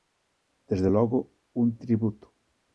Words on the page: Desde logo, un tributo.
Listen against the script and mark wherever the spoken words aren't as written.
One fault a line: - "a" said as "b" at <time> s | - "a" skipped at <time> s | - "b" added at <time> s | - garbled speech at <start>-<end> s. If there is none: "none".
none